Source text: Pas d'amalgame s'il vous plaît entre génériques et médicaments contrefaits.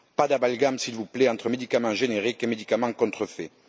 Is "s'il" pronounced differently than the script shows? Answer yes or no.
no